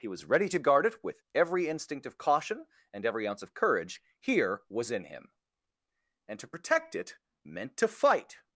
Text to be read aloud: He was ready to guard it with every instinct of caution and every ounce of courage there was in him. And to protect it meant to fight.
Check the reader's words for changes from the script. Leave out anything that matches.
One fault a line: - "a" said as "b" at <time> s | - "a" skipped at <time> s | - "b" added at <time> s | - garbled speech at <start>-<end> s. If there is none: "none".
- "there" said as "here" at 4.2 s